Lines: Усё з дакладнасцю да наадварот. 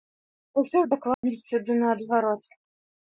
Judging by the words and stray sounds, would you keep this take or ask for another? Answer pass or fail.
fail